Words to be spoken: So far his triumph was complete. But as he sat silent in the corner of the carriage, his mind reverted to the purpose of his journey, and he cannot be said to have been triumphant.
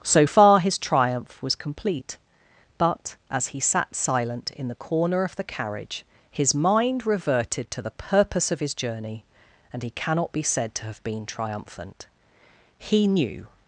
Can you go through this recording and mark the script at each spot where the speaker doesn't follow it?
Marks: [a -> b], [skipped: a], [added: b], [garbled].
So far his triumph was complete. But as he sat silent in the corner of the carriage, his mind reverted to the purpose of his journey, and he cannot be said to have been triumphant. [added: He knew]